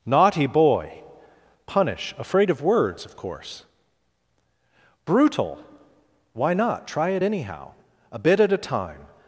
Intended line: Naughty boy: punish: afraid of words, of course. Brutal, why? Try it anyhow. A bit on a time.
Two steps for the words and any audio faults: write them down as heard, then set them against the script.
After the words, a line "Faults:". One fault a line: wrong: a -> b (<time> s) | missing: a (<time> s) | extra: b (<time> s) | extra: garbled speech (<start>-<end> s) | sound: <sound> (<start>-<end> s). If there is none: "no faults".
Naughty boy: punish: afraid of words, of course. Brutal, why not? Try it anyhow. A bit at a time.
Faults:
extra: not (6.5 s)
wrong: on -> at (8.4 s)